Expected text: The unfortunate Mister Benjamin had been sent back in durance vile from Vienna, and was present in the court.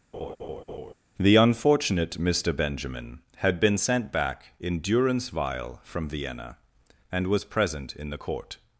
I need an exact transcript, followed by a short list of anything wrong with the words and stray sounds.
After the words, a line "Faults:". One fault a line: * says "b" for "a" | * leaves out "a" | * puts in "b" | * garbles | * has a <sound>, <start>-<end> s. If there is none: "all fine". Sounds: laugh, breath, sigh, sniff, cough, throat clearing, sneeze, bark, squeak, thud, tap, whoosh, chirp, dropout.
The unfortunate Mister Benjamin had been sent back in durance vile from Vienna, and was present in the court.
Faults:
* has a laugh, 0.1-0.9 s